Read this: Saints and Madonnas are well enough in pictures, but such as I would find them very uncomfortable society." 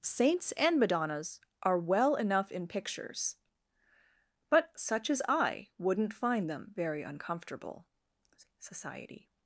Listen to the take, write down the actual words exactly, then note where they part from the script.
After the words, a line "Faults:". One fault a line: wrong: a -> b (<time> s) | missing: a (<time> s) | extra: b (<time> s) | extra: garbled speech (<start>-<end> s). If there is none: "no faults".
Saints and Madonnas are well enough in pictures, but such as I wouldn't find them very uncomfortable society."
Faults:
wrong: would -> wouldn't (5.8 s)